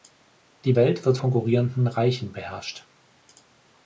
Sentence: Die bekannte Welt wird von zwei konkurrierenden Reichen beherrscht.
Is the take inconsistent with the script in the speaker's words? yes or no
yes